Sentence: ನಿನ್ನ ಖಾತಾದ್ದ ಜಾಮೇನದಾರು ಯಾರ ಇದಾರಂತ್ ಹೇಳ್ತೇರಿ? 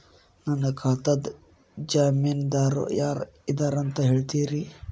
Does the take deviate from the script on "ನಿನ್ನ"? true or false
true